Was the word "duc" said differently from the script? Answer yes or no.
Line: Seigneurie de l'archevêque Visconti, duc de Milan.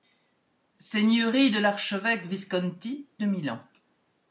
yes